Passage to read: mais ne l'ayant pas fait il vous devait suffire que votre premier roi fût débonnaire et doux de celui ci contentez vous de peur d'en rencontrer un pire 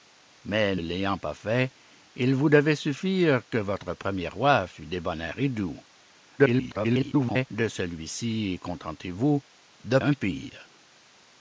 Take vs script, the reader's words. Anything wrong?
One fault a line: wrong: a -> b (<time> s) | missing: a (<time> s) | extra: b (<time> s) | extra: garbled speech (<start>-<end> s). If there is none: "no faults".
missing: ne (0.8 s)
extra: garbled speech (6.4-7.5 s)
missing: peur d'en rencontrer (10.0 s)